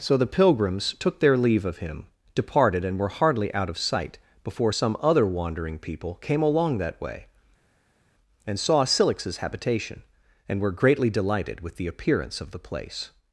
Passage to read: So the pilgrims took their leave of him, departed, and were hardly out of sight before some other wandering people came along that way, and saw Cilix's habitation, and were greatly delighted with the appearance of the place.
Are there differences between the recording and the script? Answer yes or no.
no